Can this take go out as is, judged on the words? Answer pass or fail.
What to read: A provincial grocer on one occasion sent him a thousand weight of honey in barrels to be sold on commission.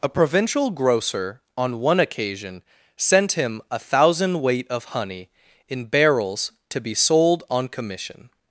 pass